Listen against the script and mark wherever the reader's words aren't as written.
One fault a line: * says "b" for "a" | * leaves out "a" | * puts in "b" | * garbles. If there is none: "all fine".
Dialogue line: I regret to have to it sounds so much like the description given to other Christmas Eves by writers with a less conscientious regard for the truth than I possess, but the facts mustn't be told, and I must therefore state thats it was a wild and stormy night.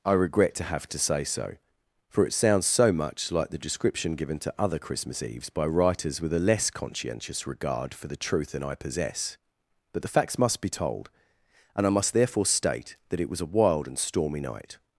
* puts in "say so for"
* says "must" for "mustn't"
* says "that" for "thats"